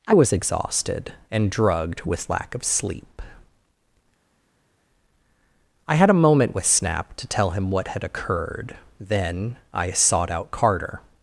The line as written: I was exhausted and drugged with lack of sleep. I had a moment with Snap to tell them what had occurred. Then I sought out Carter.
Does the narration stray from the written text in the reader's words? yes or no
yes